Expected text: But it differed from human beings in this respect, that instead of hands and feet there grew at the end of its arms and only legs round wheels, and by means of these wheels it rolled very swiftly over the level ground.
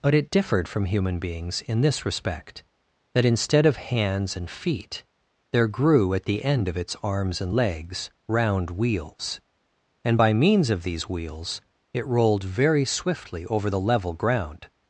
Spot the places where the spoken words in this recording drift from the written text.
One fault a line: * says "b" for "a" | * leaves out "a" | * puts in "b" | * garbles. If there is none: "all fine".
* leaves out "only"